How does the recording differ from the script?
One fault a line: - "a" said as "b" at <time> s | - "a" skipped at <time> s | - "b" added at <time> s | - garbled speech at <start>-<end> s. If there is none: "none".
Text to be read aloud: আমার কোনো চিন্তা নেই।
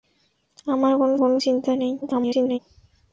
- "কোনো" added at 1.2 s
- garbled speech at 2.0-2.6 s